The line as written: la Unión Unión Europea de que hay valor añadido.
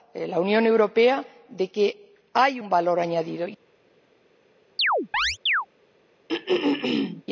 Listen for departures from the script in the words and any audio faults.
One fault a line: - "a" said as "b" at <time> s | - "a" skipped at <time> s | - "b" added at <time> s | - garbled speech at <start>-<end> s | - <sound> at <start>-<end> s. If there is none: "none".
- "Unión" skipped at 0.7 s
- "un" added at 2.5 s
- chirp at 4.8-5.7 s
- throat clearing at 6.3-7.2 s